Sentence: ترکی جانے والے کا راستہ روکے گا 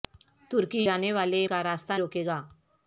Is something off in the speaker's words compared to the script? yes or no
no